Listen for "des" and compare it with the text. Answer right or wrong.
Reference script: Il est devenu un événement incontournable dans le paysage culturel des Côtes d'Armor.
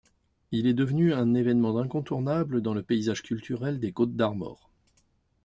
right